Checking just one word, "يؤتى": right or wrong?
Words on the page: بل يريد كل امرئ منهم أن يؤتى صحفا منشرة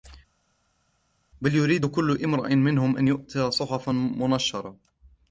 right